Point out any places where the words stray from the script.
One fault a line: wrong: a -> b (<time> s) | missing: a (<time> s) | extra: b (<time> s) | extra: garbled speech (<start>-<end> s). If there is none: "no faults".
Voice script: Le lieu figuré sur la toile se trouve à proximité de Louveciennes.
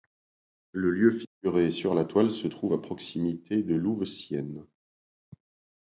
no faults